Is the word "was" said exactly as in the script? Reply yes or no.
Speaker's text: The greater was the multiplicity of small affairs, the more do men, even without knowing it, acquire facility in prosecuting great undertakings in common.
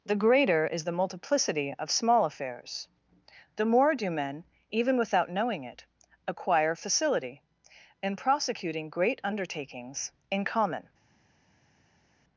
no